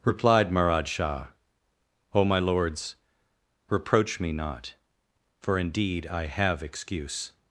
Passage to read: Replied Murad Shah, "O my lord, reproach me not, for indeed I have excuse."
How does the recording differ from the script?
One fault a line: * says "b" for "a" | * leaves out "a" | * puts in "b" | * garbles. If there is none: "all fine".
* says "lords" for "lord"